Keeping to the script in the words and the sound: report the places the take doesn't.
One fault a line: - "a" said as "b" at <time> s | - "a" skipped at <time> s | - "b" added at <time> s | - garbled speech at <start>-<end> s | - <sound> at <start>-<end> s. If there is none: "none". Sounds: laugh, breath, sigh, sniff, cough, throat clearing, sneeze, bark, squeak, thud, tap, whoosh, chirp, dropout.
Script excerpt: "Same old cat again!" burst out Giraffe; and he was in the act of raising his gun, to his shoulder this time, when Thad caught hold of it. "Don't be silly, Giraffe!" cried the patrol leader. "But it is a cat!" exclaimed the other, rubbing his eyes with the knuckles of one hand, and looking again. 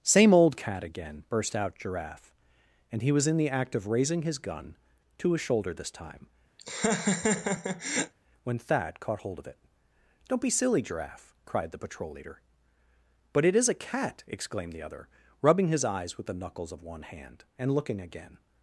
- laugh at 6.6-8.1 s